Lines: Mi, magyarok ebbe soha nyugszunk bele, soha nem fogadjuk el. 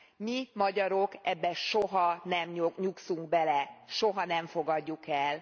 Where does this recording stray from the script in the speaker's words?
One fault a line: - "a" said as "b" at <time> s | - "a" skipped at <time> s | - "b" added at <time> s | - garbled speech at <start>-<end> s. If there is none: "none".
- "nem" added at 2.2 s